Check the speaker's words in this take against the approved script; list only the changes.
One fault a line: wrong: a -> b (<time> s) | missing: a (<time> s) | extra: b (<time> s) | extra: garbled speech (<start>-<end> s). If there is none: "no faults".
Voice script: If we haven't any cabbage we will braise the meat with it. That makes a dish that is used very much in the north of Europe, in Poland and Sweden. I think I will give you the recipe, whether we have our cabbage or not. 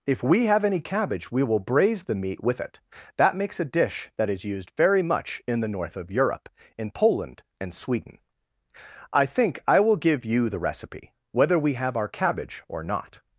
wrong: haven't -> have (0.5 s)